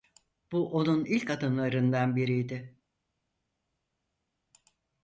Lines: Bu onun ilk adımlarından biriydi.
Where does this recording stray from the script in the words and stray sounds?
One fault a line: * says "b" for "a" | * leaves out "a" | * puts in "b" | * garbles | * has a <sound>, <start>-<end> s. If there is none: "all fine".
all fine